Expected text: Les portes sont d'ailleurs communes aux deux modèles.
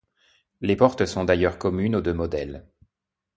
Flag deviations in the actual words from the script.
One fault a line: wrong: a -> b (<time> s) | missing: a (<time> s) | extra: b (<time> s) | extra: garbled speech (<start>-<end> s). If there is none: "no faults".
no faults